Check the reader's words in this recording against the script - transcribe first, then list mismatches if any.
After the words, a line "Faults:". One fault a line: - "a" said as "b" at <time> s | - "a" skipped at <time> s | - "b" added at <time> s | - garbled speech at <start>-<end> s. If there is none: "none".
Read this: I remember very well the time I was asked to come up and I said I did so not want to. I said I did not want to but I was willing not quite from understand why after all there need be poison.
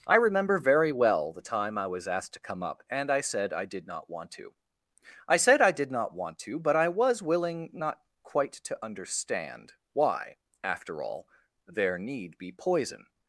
I remember very well the time I was asked to come up and I said I did not want to. I said I did not want to but I was willing not quite to understand why after all there need be poison.
Faults:
- "so" skipped at 3.9 s
- "from" said as "to" at 8.5 s